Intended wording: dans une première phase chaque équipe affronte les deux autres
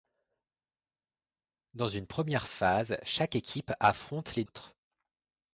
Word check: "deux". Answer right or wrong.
wrong